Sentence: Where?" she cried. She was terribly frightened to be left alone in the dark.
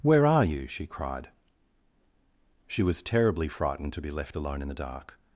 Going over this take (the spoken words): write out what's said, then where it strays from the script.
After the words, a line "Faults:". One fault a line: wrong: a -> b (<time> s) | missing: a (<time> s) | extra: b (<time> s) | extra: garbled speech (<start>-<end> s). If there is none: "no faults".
Where are you?" she cried. She was terribly frightened to be left alone in the dark.
Faults:
extra: are you (0.2 s)